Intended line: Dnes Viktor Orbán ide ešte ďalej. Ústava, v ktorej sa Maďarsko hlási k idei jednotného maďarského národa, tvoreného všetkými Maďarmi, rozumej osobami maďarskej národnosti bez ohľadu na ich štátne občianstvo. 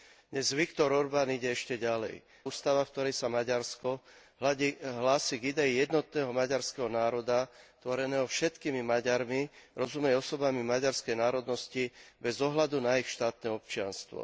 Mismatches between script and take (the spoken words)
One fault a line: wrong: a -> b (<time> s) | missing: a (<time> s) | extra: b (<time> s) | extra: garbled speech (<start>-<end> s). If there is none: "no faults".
no faults